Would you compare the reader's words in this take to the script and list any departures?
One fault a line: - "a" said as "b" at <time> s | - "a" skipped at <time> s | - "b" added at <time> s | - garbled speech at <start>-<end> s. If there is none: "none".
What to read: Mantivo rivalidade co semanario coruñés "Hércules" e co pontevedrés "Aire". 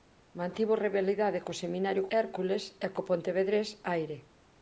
- "coruñés" skipped at 2.1 s